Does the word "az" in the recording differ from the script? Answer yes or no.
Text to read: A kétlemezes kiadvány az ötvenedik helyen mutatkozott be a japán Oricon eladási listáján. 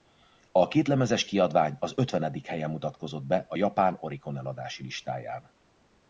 no